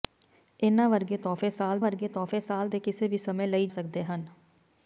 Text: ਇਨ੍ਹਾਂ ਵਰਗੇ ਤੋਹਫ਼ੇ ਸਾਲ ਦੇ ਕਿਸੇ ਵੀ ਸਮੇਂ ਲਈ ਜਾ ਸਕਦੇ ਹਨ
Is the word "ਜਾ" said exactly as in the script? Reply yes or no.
no